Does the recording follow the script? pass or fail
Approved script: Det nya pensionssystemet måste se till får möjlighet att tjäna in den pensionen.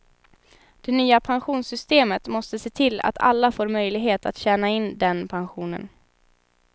fail